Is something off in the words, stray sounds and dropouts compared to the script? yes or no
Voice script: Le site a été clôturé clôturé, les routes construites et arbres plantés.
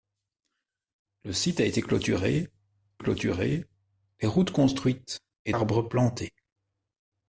no